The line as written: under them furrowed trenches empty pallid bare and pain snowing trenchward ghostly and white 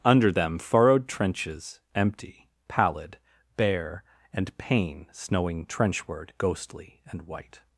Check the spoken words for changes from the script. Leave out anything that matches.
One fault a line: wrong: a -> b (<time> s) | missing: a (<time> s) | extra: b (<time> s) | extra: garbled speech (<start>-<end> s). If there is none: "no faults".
no faults